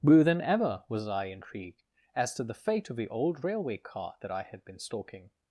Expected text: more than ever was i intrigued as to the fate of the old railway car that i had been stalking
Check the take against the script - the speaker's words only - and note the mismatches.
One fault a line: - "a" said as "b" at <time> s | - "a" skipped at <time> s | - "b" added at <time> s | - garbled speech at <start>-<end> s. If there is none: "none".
none